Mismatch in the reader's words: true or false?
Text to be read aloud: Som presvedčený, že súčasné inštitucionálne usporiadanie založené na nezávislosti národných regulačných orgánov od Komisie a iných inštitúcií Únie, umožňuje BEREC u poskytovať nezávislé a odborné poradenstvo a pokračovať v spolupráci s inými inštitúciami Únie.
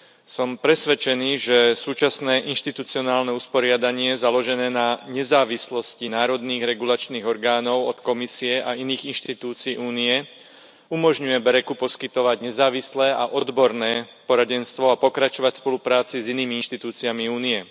false